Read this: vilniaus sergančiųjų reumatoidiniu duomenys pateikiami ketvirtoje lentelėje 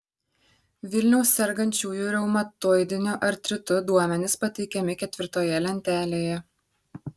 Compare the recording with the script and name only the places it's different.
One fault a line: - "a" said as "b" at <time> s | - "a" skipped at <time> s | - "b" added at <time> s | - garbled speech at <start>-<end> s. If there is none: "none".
- "artritu" added at 3.3 s